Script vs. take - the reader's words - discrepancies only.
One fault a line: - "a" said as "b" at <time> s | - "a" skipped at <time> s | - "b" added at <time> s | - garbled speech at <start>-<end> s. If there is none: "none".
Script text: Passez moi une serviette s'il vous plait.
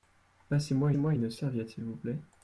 - "moi" added at 1.0 s